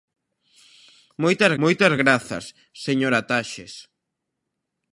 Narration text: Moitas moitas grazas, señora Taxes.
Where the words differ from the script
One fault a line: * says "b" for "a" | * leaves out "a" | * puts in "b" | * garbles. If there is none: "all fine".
all fine